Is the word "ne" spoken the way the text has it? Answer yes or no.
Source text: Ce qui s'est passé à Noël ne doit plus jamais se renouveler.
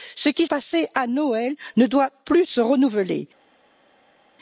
yes